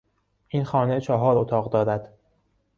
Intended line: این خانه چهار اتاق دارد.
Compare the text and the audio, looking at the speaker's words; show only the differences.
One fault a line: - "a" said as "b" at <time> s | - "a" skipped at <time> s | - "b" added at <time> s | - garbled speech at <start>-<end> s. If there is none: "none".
none